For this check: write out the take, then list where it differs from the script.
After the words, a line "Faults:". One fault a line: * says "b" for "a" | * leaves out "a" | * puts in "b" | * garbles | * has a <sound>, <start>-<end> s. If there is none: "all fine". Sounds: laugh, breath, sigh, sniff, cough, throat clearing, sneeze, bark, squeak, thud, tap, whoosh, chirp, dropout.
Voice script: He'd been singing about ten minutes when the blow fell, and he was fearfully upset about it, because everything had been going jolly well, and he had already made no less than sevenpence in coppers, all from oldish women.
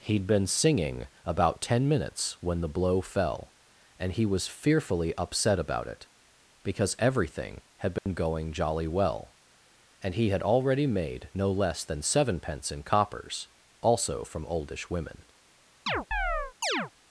He'd been singing about ten minutes when the blow fell, and he was fearfully upset about it, because everything had been going jolly well, and he had already made no less than sevenpence in coppers, also from oldish women.
Faults:
* has a dropout, 8.0-8.1 s
* says "also" for "all"
* has a chirp, 15.9-16.9 s